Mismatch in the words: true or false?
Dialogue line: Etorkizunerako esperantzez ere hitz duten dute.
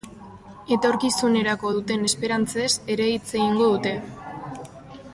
true